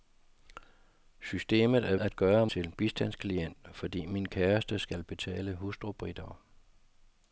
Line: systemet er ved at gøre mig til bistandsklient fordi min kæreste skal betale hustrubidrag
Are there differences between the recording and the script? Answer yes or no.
yes